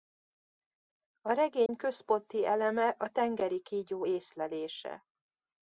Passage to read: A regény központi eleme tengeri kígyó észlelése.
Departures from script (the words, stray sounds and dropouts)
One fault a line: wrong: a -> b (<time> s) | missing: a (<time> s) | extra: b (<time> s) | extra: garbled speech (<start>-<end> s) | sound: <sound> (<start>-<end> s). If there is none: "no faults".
sound: dropout (1.7-1.7 s)
extra: a (2.9 s)